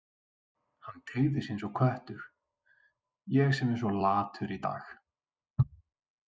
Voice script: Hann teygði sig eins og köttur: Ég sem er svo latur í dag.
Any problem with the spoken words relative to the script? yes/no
no